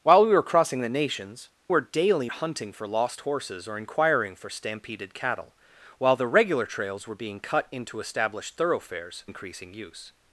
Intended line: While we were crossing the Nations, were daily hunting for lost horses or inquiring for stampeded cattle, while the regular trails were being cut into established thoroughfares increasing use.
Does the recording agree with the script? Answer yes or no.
yes